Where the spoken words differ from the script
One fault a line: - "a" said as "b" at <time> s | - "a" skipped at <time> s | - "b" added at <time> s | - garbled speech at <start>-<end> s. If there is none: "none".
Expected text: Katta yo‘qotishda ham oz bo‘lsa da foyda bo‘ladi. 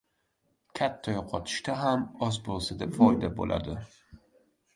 none